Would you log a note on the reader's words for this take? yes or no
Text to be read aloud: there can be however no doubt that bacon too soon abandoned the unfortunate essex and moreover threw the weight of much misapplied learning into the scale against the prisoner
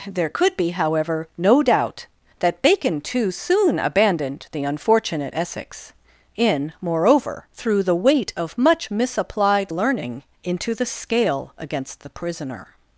yes